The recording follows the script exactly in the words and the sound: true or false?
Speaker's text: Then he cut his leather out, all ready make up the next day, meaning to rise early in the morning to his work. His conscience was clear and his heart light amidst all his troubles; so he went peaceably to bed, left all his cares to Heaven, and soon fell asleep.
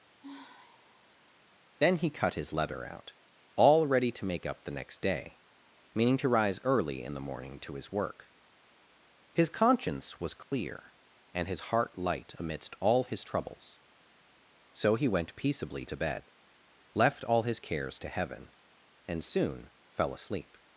false